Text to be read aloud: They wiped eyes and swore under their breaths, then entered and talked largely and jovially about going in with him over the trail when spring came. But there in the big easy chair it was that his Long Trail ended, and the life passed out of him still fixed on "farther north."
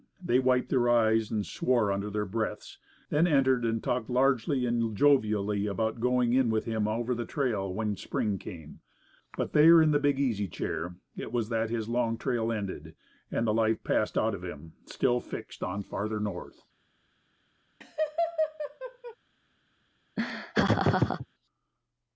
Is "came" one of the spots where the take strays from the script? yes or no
no